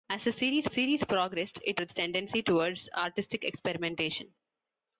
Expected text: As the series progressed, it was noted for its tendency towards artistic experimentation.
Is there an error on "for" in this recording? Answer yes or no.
yes